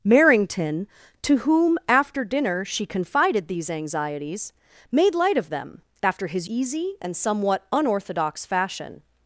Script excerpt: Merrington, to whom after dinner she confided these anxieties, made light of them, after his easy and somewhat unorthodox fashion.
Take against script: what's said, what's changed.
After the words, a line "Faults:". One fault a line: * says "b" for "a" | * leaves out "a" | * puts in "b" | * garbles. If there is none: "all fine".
Merrington, to whom after dinner she confided these anxieties, made light of them, after his easy and somewhat unorthodox fashion.
Faults:
all fine